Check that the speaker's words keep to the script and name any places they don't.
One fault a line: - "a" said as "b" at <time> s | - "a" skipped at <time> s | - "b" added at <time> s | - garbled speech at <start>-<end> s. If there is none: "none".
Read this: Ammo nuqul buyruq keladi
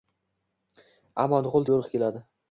none